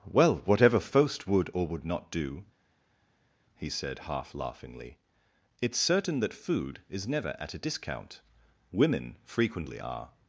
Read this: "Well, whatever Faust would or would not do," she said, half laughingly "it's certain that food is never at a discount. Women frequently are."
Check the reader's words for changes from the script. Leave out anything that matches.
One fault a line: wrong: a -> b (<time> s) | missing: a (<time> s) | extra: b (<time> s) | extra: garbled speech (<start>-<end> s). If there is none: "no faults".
wrong: she -> he (3.6 s)